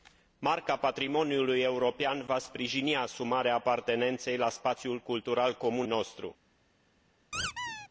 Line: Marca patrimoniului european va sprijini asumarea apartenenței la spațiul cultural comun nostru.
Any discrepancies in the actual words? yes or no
no